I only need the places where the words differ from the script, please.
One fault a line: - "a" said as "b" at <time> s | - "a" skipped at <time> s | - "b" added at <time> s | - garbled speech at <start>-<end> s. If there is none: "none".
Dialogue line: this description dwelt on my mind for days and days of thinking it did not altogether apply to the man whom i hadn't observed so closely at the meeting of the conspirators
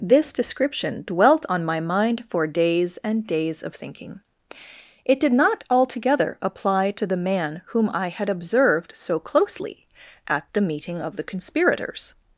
- "hadn't" said as "had" at 8.1 s